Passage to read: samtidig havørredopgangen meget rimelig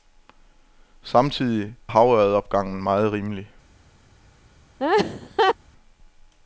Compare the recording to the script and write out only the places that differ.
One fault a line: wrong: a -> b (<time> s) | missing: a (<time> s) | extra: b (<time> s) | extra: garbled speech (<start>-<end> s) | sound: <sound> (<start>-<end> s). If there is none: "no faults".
sound: laugh (4.8-5.6 s)